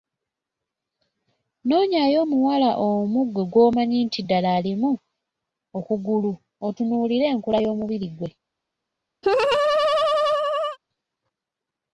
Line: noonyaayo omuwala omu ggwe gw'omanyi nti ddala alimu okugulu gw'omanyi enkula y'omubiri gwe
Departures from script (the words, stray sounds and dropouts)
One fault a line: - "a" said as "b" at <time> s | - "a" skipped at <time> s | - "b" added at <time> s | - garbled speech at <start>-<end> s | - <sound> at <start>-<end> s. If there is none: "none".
- "gw'omanyi" said as "otunuulire" at 6.7 s
- laugh at 9.2-10.8 s